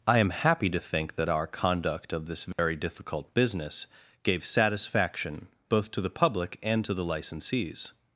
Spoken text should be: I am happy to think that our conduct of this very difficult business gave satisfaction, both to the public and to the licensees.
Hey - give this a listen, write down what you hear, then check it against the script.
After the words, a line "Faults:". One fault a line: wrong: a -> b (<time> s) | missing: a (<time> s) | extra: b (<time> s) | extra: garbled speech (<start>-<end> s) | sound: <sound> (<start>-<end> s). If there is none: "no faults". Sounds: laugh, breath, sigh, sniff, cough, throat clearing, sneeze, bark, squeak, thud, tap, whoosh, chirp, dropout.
I am happy to think that our conduct of this very difficult business gave satisfaction, both to the public and to the licensees.
Faults:
sound: dropout (2.5-2.6 s)